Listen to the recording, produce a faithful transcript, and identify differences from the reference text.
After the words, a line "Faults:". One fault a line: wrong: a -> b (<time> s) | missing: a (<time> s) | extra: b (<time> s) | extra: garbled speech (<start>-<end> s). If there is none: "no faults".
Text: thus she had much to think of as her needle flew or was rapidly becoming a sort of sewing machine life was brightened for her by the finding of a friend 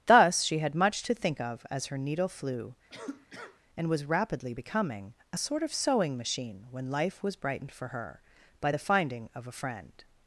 thus she had much to think of as her needle flew and was rapidly becoming a sort of sewing machine when life was brightened for her by the finding of a friend
Faults:
wrong: or -> and (3.8 s)
extra: when (6.7 s)